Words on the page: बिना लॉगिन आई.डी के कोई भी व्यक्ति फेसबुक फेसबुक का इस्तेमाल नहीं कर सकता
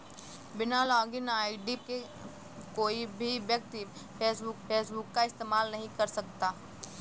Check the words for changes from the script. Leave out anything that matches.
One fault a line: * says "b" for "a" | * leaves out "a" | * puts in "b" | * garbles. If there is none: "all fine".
all fine